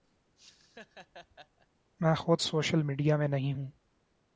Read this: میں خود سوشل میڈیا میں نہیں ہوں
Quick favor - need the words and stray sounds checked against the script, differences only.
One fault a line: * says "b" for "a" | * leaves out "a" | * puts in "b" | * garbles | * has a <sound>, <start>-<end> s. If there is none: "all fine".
* has a laugh, 0.4-1.7 s